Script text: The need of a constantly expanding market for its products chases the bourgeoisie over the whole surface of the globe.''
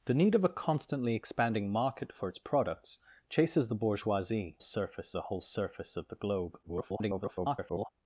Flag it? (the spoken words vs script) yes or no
yes